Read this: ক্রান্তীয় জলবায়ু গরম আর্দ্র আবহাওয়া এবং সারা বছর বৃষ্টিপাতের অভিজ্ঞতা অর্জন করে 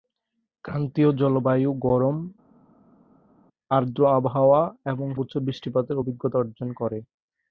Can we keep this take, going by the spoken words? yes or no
no